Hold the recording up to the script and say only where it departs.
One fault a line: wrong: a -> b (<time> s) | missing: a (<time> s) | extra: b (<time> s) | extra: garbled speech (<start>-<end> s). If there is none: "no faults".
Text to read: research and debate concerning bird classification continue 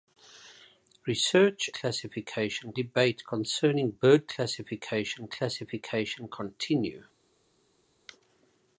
wrong: and -> classification (1.7 s)
extra: classification (5.3 s)